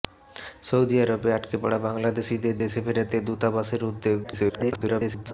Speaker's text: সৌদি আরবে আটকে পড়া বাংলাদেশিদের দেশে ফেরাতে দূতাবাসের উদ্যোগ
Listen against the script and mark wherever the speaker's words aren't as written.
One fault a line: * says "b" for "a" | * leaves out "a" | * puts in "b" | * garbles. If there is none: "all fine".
* garbles